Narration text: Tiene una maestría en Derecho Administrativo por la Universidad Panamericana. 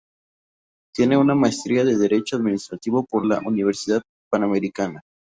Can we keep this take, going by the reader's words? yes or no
yes